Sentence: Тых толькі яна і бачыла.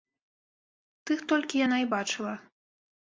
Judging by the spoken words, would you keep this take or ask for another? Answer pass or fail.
pass